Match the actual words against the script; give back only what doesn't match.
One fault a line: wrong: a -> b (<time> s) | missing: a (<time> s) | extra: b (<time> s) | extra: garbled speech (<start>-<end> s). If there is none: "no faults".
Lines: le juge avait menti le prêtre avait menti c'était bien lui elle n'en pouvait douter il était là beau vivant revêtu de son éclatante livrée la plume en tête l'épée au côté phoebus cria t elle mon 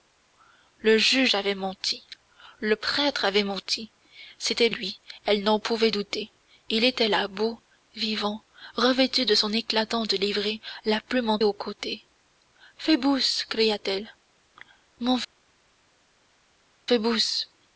missing: bien (4.7 s)
missing: tête l'épée (11.4 s)